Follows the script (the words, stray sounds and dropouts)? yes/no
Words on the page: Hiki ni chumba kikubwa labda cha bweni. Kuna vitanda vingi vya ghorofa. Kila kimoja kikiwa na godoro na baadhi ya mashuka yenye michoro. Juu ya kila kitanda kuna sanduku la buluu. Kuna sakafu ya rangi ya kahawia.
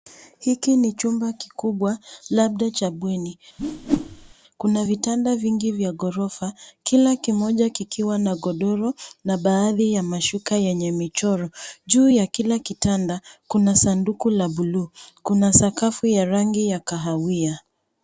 no